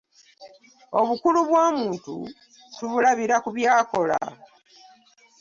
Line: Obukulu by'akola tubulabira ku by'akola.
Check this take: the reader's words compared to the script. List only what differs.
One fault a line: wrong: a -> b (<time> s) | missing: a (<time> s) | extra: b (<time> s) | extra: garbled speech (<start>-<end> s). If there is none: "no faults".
wrong: by'akola -> bw'omuntu (1.5 s)